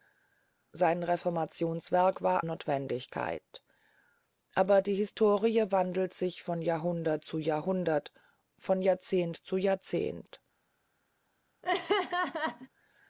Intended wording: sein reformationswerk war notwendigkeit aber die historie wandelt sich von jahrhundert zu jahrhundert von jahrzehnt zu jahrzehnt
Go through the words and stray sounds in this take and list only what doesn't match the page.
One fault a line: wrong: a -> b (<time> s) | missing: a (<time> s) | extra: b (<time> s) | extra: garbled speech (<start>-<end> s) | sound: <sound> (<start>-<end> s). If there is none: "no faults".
sound: laugh (11.6-12.7 s)